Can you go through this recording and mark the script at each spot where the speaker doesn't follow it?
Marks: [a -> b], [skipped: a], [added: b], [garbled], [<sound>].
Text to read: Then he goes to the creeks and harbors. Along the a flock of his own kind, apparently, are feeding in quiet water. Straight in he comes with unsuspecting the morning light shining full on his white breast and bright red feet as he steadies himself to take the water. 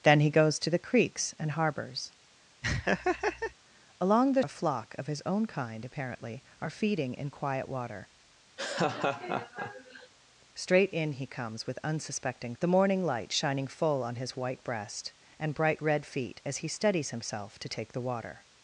Then he goes to the creeks and harbors. [laugh] Along the a flock of his own kind, apparently, are feeding in quiet water. [laugh] Straight in he comes with unsuspecting the morning light shining full on his white breast and bright red feet as he steadies himself to take the water.